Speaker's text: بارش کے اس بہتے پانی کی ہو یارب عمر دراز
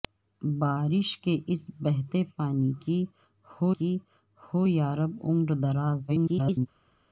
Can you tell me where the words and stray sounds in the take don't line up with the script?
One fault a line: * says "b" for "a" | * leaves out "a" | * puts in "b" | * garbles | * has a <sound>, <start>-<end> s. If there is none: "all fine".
* puts in "کی ہو"
* garbles